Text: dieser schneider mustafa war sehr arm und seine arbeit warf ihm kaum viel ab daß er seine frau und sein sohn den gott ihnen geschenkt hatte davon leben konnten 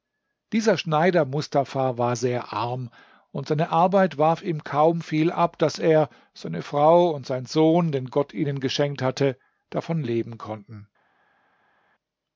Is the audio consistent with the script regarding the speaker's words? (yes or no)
yes